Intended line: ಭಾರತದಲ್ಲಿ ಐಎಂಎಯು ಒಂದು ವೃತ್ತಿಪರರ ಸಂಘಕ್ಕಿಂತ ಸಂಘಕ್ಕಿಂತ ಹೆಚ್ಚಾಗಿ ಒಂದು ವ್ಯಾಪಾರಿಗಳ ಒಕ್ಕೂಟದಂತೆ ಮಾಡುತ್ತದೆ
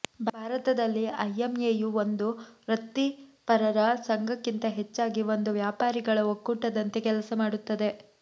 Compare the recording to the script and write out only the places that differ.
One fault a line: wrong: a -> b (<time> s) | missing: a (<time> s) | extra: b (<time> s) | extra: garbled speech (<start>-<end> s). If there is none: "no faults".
missing: ಸಂಘಕ್ಕಿಂತ (4.7 s)
extra: ಕೆಲಸ (7.1 s)